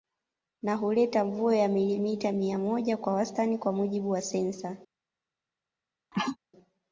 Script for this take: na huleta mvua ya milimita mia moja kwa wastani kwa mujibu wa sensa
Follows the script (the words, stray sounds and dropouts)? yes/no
no